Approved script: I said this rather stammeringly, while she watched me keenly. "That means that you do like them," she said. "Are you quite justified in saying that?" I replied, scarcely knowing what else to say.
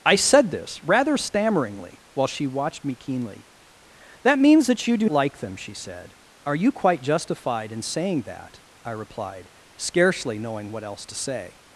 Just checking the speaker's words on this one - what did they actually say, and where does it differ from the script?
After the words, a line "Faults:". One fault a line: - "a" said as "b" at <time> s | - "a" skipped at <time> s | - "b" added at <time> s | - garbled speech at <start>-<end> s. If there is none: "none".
I said this rather stammeringly, while she watched me keenly. "That means that you do like them," she said. "Are you quite justified in saying that?" I replied, scarcely knowing what else to say.
Faults:
none